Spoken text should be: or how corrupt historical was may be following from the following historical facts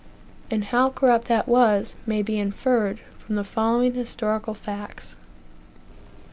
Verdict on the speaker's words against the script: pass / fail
fail